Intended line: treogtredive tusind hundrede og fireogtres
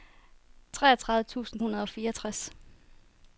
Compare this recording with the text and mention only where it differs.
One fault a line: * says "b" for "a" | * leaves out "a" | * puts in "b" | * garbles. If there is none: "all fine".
all fine